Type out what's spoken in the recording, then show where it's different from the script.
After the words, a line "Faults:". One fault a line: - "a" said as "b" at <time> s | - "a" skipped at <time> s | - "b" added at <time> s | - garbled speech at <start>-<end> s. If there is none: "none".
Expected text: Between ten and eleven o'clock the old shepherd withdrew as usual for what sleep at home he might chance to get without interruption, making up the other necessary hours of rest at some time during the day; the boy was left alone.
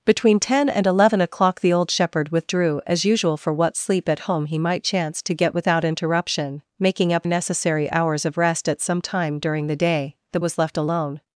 Between ten and eleven o'clock the old shepherd withdrew as usual for what sleep at home he might chance to get without interruption, making up necessary hours of rest at some time during the day; the was left alone.
Faults:
- "the other" skipped at 7.3 s
- "boy" skipped at 10.4 s